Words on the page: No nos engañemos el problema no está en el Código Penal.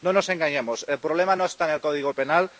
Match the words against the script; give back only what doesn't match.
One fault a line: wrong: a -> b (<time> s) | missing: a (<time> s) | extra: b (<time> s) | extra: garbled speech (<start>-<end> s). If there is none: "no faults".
no faults